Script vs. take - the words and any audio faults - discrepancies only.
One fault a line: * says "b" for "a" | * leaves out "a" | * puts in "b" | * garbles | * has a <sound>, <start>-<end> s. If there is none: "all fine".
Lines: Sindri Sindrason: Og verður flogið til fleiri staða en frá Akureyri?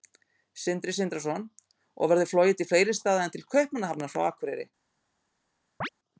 * puts in "til Kaupmannahafnar"
* has a chirp, 5.8-5.9 s